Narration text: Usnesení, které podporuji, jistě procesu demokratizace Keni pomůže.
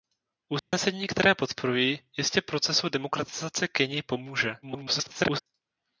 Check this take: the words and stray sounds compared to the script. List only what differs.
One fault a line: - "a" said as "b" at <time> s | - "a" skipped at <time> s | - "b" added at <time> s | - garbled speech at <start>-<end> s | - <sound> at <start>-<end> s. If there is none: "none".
- dropout at 0.6-0.7 s
- garbled speech at 4.6-5.4 s